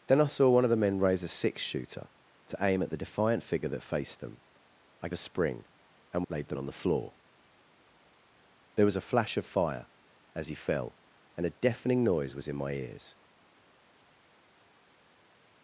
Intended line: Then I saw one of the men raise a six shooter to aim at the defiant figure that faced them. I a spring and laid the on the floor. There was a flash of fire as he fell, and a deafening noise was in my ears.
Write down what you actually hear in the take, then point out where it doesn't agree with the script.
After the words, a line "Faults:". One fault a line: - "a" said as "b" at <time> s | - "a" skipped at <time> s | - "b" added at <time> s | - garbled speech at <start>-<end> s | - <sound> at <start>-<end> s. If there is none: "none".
Then I saw one of the men raise a six shooter to aim at the defiant figure that faced them. I a spring and laid the on the floor. There was a flash of fire as he fell, and a deafening noise was in my ears.
Faults:
none